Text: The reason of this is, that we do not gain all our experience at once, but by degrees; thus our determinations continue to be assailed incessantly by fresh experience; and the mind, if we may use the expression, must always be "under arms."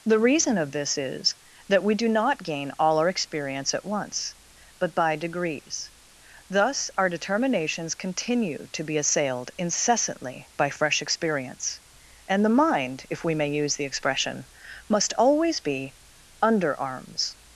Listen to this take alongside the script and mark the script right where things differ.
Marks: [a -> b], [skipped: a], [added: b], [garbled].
The reason of this is, that we do not gain all our experience at once, but by degrees; thus our determinations continue to be assailed incessantly by fresh experience; and the mind, if we may use the expression, must always be "under arms."